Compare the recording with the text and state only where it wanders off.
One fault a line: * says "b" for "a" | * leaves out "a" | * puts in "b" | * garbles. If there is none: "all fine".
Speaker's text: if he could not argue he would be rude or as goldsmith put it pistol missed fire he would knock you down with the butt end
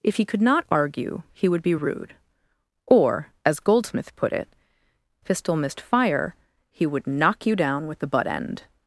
all fine